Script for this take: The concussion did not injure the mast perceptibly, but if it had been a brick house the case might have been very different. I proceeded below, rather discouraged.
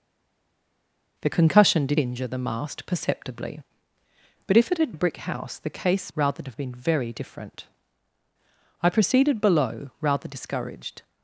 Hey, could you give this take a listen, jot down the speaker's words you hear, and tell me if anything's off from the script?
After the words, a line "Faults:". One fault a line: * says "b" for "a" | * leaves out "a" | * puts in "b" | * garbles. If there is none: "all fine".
The concussion did injure the mast perceptibly, but if it had a brick house the case rather have been very different. I proceeded below, rather discouraged.
Faults:
* leaves out "not"
* leaves out "been"
* says "rather" for "might"